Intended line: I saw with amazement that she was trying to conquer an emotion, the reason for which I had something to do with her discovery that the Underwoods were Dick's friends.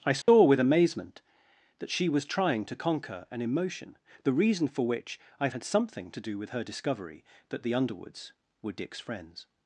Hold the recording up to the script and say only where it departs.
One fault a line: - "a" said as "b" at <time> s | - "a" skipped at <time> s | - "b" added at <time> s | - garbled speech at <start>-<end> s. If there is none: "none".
none